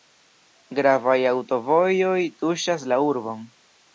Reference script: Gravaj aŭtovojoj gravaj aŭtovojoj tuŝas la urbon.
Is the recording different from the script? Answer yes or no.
yes